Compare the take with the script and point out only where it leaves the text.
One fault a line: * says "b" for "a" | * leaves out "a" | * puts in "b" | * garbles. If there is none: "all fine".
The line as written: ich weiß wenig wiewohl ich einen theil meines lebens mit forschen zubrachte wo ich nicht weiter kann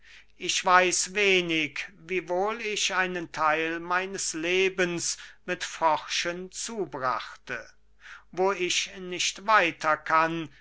all fine